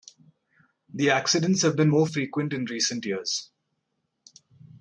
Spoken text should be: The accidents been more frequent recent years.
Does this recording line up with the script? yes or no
no